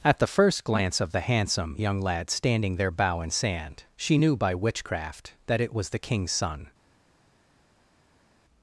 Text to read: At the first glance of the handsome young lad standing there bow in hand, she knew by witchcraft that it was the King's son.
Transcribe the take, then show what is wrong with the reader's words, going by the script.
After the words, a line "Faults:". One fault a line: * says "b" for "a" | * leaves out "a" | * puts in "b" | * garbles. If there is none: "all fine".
At the first glance of the handsome young lad standing there bow in sand, she knew by witchcraft that it was the King's son.
Faults:
* says "sand" for "hand"